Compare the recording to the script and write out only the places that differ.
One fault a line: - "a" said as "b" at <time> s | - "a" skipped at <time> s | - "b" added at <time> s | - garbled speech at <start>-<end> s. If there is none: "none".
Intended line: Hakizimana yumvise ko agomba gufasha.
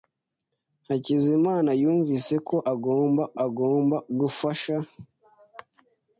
- "agomba" added at 3.5 s